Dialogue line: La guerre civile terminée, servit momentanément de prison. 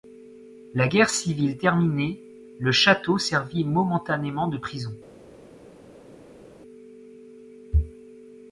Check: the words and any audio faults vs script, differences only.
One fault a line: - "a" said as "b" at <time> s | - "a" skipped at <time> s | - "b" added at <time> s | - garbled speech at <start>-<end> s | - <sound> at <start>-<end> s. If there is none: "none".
- "le château" added at 2.6 s